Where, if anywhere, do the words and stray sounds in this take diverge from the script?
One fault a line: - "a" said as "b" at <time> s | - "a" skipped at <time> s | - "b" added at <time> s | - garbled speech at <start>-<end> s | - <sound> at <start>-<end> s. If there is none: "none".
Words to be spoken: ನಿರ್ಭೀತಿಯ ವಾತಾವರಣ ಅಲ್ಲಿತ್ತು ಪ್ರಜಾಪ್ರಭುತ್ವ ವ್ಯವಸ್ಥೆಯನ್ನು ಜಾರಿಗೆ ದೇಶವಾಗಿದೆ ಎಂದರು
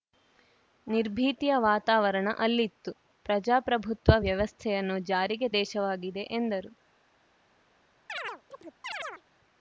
- chirp at 8.1-9.2 s